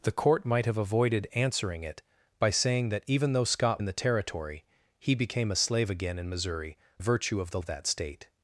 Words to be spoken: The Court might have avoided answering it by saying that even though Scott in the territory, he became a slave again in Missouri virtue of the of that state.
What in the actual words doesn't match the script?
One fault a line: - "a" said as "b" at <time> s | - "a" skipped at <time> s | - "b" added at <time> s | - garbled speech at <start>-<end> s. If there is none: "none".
none